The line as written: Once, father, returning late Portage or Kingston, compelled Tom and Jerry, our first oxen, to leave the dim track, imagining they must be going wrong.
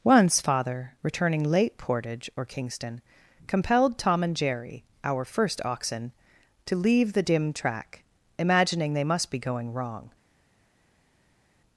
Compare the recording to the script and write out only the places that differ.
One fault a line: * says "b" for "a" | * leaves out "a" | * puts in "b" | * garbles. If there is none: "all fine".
all fine